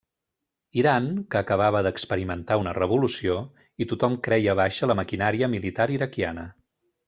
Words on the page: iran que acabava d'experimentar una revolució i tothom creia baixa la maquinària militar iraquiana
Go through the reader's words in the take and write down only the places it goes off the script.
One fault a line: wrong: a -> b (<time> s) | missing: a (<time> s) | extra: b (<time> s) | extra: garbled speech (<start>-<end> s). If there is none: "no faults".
no faults